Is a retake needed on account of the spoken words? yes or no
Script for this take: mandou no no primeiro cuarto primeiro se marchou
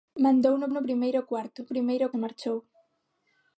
no